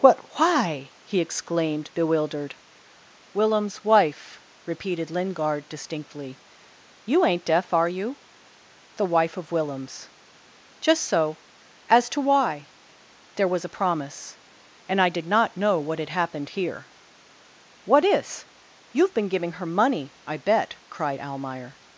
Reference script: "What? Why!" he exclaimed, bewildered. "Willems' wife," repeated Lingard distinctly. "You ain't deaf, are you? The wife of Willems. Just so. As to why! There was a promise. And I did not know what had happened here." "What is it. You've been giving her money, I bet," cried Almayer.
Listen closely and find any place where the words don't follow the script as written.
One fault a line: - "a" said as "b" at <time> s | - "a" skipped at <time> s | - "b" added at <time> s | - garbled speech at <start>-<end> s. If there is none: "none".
- "it" skipped at 18.5 s